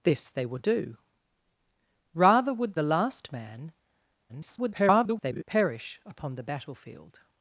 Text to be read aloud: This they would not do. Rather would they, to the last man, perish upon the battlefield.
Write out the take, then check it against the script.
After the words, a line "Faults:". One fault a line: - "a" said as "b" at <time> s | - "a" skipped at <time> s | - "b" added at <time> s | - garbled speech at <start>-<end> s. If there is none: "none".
This they would do. Rather would the last man, [garbled] perish upon the battlefield.
Faults:
- "not" skipped at 0.7 s
- "they to" skipped at 2.8 s
- garbled speech at 4.3-5.4 s